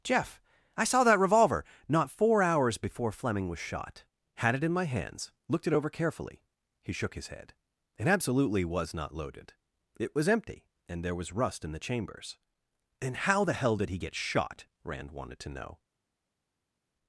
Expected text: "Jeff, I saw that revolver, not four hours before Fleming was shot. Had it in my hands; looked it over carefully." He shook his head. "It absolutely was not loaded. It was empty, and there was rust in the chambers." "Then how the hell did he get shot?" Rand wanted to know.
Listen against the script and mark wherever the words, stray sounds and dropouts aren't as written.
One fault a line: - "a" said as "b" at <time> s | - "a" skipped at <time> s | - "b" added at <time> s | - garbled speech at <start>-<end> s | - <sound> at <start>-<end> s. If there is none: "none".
- "Then" said as "And" at 13.0 s